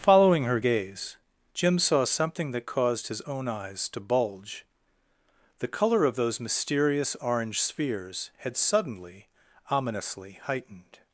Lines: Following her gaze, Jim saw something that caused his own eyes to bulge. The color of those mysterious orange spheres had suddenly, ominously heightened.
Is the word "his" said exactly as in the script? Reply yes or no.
yes